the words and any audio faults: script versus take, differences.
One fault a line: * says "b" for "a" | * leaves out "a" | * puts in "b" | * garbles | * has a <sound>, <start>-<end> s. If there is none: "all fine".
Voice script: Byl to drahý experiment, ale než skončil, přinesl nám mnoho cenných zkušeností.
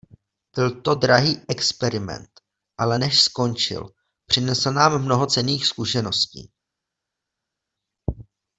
all fine